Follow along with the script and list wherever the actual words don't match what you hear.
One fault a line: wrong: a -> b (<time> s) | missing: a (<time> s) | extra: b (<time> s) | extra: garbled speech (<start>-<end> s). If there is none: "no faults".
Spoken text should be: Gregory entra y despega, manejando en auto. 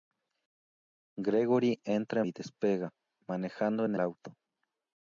no faults